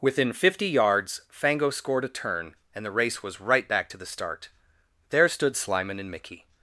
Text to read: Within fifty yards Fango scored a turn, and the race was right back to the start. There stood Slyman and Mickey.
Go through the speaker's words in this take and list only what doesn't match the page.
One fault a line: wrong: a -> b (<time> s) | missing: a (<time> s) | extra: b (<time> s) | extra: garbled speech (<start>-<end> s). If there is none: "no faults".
no faults